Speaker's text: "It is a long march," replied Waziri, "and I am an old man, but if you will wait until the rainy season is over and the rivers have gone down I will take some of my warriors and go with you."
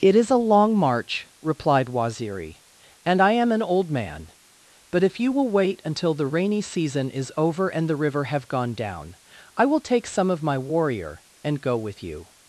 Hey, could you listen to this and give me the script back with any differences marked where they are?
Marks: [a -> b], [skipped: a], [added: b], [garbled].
"It is a long march," replied Waziri, "and I am an old man, but if you will wait until the rainy season is over and the [rivers -> river] have gone down I will take some of my [warriors -> warrior] and go with you."